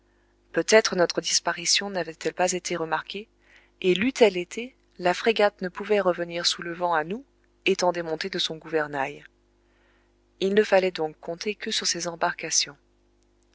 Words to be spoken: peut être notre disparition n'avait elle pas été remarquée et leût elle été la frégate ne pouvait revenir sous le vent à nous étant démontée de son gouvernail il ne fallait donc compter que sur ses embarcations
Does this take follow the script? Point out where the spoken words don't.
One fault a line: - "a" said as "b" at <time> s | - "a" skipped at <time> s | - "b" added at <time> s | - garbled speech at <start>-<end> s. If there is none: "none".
none